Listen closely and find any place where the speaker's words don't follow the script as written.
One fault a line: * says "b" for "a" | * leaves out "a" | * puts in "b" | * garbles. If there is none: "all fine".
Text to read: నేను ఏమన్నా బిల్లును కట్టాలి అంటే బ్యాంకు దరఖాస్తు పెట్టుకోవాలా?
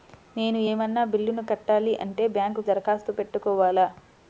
all fine